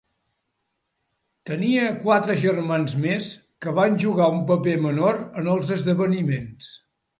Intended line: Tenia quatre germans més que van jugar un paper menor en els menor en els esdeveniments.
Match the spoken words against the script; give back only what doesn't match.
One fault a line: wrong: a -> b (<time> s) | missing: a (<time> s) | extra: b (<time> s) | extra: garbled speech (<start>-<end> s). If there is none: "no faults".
missing: menor en els (5.7 s)